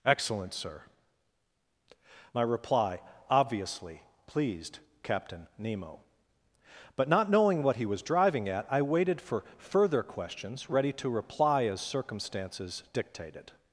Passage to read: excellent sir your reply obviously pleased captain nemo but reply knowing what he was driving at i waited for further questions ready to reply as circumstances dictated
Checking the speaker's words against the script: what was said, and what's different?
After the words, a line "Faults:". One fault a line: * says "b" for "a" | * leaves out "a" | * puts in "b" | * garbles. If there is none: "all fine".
excellent sir my reply obviously pleased captain nemo but not knowing what he was driving at i waited for further questions ready to reply as circumstances dictated
Faults:
* says "my" for "your"
* says "not" for "reply"